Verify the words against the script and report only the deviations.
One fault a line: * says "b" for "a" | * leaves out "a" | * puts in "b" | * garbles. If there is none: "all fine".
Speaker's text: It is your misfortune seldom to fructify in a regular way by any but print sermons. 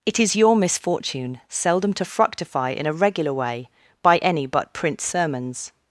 all fine